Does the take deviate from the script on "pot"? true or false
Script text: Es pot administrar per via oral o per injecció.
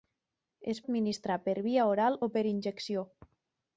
true